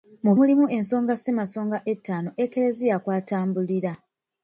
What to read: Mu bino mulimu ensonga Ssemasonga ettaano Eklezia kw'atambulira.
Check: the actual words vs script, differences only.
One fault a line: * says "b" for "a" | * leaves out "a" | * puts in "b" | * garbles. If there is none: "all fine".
* leaves out "bino"